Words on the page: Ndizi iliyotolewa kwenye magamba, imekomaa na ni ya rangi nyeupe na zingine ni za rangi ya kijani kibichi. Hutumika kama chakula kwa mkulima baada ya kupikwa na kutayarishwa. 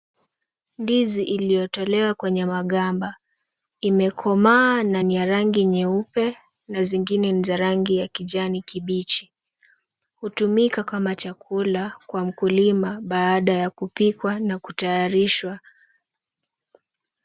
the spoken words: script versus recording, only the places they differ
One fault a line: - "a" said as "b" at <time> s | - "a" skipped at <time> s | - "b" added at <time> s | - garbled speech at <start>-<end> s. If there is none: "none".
none